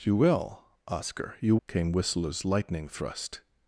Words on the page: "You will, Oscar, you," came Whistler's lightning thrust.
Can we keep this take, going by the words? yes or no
yes